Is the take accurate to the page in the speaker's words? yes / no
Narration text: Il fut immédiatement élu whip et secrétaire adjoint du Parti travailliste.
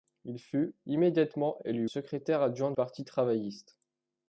no